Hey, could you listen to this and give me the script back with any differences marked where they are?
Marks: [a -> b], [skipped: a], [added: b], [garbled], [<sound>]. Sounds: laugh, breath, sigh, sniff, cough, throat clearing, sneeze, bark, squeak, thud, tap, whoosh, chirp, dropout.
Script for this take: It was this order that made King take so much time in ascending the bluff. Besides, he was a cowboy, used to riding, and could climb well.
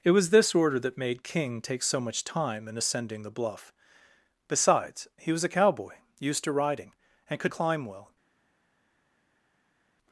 It was this order that made King take so much time in ascending the bluff. Besides, he was a cowboy, used to riding, and could climb well.